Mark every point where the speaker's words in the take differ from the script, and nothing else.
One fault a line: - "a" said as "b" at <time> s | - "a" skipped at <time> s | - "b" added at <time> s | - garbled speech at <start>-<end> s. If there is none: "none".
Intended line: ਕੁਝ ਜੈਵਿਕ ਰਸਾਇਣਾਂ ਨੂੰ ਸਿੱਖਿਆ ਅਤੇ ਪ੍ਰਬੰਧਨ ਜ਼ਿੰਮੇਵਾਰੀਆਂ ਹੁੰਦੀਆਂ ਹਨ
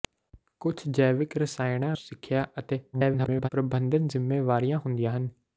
- "ਨੂੰ" skipped at 1.9 s
- garbled speech at 2.9-3.5 s